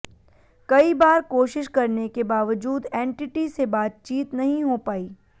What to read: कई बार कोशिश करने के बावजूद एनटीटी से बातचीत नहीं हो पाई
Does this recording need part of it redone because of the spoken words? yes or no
no